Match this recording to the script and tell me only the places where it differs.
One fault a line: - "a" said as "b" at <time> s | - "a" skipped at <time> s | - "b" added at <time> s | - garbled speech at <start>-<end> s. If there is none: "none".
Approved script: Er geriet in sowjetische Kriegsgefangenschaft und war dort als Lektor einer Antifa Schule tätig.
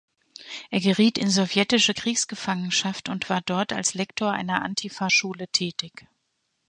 none